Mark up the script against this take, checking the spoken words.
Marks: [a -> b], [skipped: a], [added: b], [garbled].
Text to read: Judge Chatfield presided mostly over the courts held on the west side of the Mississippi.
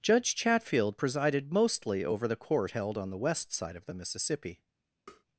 Judge Chatfield presided mostly over the [courts -> court] held on the west side of the Mississippi.